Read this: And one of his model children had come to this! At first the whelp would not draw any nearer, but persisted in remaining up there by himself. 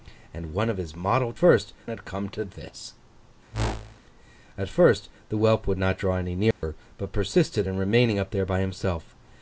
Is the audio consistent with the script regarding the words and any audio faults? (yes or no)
no